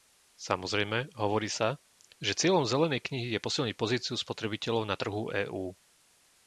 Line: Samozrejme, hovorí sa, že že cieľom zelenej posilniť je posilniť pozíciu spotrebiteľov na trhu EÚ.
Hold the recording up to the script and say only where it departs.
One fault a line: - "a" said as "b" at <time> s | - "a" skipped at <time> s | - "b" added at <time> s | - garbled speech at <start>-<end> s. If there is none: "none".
- "že" skipped at 2.3 s
- "posilniť" said as "knihy" at 3.0 s